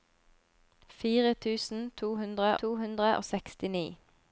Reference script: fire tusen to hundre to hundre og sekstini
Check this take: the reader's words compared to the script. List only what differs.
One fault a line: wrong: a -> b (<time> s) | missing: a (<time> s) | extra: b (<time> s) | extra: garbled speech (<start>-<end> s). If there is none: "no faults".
no faults